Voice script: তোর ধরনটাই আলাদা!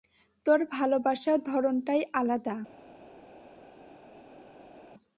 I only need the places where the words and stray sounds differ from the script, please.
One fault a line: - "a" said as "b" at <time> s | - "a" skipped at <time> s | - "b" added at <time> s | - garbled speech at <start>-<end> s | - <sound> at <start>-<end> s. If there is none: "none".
- "ভালোবাসার" added at 0.7 s